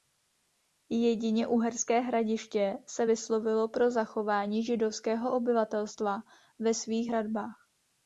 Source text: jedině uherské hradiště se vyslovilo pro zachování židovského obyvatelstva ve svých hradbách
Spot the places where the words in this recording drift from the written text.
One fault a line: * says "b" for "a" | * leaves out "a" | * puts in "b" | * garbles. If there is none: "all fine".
all fine